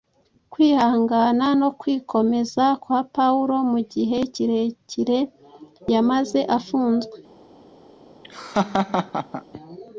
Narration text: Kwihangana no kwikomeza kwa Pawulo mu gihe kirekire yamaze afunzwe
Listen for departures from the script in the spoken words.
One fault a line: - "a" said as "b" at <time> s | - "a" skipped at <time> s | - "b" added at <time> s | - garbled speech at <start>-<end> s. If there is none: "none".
none